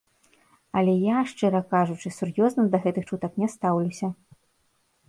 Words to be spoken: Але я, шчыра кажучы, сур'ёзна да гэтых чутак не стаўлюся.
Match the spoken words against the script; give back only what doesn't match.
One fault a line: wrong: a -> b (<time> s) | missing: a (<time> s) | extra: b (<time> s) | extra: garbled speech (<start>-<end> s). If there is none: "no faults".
no faults